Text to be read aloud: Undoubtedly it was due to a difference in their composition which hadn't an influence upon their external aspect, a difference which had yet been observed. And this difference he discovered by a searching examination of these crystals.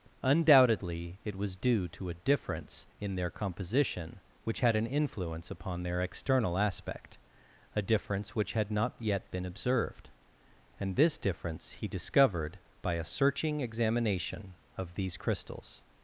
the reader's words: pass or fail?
fail